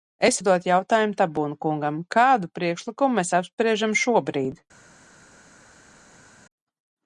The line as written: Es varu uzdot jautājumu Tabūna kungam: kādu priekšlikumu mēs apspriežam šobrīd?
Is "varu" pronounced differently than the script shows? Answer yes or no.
yes